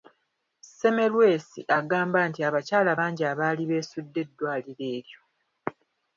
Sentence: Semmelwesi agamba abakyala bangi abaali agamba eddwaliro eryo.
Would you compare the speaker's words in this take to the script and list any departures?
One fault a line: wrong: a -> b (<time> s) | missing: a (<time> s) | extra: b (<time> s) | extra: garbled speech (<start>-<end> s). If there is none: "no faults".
extra: nti (2.3 s)
wrong: agamba -> beesudde (3.7 s)